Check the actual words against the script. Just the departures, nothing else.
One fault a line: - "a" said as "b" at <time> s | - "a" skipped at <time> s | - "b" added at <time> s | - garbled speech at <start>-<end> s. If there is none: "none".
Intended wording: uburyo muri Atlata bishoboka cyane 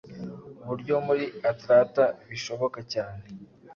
none